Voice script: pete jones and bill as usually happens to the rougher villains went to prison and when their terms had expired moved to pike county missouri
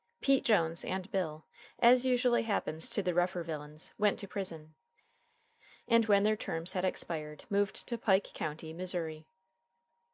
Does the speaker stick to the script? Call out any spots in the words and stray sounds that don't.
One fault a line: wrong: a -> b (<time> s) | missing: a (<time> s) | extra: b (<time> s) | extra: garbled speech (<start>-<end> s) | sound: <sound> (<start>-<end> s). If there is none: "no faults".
no faults